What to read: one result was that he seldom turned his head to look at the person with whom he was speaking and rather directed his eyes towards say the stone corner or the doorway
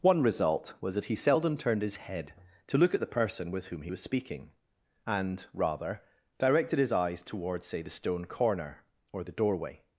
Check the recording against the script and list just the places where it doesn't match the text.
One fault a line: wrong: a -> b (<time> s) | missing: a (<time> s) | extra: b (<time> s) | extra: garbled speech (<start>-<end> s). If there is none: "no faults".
no faults